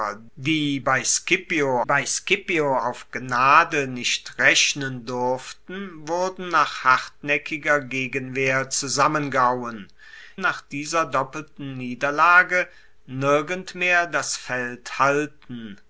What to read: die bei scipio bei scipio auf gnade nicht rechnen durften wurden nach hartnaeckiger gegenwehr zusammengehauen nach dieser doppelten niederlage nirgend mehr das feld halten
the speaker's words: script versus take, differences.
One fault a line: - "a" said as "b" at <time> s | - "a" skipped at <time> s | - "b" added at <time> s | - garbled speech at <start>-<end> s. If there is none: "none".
none